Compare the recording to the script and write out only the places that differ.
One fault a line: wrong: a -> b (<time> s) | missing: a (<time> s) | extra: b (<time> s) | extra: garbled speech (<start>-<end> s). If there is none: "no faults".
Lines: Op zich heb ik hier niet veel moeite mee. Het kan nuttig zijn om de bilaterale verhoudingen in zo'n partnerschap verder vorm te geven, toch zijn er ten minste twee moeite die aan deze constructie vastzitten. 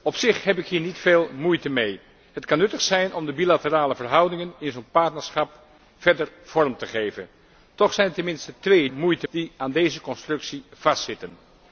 no faults